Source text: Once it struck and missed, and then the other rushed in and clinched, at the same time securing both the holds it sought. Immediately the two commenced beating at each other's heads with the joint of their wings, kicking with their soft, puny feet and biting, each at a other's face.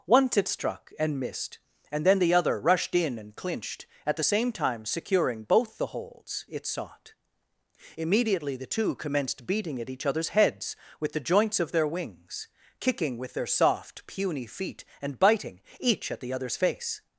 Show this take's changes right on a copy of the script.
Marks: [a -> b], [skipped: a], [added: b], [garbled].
Once it struck and missed, and then the other rushed in and clinched, at the same time securing both the holds it sought. Immediately the two commenced beating at each other's heads with the [joint -> joints] of their wings, kicking with their soft, puny feet and biting, each at [a -> the] other's face.